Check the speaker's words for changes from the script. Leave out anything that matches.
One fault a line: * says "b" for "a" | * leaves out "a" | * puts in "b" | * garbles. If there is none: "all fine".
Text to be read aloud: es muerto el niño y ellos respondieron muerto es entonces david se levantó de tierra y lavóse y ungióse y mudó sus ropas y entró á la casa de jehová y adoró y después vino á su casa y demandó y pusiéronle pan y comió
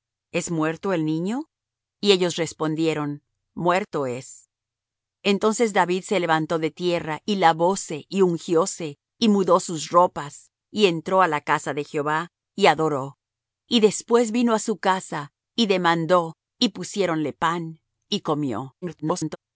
* garbles